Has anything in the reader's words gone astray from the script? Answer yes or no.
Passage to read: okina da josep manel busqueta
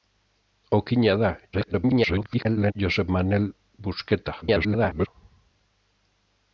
yes